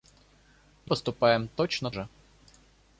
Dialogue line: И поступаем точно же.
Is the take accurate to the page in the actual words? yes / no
yes